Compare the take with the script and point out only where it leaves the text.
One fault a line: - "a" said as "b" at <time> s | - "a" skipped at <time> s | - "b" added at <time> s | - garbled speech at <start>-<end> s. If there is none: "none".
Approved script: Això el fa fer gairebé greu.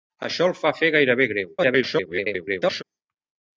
- garbled speech at 1.6-2.8 s